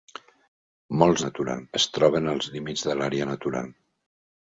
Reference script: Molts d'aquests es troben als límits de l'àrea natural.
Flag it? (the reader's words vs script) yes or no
yes